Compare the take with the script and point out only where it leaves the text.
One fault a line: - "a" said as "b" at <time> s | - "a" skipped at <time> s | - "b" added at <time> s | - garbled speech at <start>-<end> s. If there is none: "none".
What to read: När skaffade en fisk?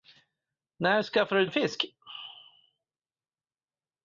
none